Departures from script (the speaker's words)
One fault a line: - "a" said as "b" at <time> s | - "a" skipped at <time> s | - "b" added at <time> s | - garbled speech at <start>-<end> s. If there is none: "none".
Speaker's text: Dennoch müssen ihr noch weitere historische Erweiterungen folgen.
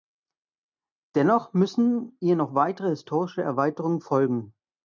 none